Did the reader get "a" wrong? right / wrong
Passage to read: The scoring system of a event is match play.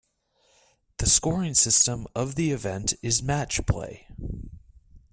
wrong